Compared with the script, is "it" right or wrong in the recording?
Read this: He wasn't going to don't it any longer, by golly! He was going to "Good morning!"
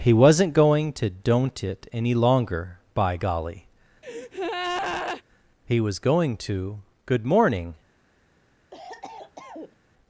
right